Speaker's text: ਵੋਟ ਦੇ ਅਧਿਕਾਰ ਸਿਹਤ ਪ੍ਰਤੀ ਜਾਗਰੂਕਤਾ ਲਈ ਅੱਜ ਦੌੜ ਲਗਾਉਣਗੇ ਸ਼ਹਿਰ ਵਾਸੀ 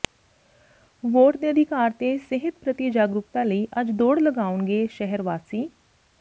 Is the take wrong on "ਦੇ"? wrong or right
right